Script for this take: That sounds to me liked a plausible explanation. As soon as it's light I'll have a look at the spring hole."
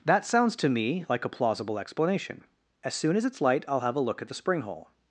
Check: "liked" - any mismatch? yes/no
yes